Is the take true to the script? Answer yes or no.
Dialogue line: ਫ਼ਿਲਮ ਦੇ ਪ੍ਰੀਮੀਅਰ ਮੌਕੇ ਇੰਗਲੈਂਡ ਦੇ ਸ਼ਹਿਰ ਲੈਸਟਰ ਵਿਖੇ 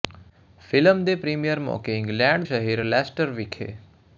no